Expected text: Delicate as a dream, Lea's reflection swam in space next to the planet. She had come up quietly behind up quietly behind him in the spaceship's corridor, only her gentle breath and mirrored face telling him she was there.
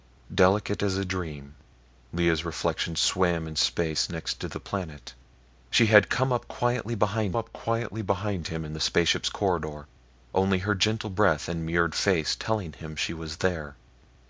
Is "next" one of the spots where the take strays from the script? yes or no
no